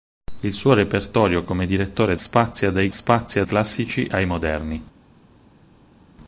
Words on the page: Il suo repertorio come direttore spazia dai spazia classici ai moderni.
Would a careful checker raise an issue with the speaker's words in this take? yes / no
no